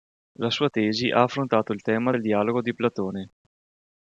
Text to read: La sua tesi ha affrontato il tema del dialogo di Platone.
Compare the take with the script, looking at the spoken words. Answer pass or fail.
pass